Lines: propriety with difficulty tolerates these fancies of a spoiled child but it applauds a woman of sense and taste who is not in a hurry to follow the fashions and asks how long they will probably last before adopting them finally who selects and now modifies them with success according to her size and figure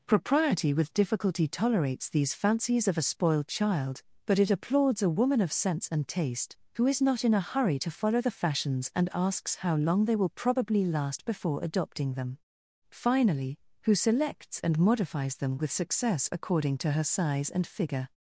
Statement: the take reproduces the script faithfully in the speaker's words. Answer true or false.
false